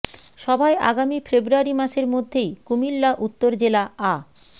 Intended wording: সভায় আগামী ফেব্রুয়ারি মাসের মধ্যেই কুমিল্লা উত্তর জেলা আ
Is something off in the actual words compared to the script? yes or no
no